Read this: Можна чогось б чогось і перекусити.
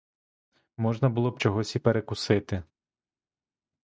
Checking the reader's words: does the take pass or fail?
fail